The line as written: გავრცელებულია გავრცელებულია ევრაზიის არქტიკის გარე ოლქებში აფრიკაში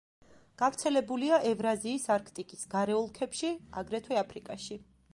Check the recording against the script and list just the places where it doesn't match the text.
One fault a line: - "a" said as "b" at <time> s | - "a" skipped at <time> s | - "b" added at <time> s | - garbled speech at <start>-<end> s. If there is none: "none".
- "გავრცელებულია" skipped at 1.4 s
- "აგრეთვე" added at 3.8 s